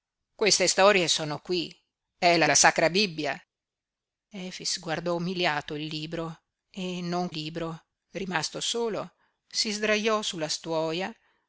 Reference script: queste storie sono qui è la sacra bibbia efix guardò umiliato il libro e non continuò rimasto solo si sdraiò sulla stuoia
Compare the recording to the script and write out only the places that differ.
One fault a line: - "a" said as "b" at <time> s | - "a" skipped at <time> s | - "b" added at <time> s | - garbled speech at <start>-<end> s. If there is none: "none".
- "la" added at 2.4 s
- "continuò" said as "libro" at 7.3 s